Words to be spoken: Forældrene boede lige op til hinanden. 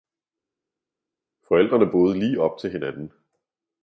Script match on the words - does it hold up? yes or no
yes